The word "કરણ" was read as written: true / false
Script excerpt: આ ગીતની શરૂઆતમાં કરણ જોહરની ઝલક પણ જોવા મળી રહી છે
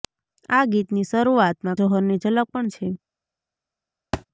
false